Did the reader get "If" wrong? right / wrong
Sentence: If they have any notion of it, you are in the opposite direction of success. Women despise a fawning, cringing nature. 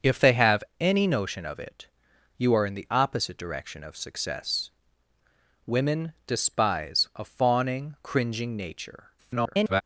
right